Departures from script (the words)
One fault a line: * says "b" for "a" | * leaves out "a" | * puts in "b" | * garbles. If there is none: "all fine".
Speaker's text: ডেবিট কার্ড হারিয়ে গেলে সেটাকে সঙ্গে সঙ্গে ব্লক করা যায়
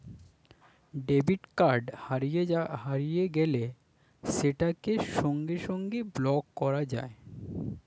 all fine